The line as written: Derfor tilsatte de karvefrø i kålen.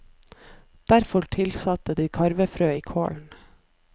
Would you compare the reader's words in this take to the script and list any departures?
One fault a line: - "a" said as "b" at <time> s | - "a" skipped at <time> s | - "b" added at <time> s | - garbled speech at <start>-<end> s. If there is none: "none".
none